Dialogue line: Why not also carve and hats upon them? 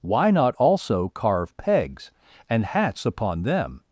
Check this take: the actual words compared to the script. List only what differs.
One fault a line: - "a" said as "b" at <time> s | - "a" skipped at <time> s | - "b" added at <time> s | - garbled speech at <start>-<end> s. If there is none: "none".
- "pegs" added at 1.6 s